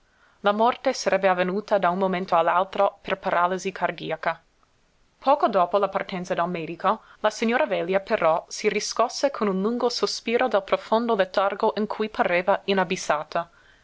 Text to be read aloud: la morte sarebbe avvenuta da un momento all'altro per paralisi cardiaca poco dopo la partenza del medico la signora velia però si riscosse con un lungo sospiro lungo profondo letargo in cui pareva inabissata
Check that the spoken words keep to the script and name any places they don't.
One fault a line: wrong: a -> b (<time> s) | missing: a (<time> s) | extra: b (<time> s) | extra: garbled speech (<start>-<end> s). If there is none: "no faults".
wrong: lungo -> dal (10.5 s)